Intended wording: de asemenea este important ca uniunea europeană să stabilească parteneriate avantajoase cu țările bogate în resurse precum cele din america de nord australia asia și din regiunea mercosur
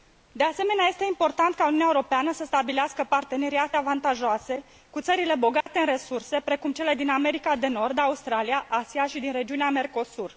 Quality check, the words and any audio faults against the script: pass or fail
fail